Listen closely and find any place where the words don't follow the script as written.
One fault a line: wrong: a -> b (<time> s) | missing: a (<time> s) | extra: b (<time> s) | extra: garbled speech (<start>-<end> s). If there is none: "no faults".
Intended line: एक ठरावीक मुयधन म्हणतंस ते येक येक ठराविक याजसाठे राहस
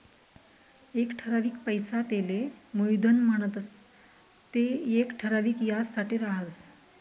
extra: पैसा तेले (1.6 s)
missing: येक (5.1 s)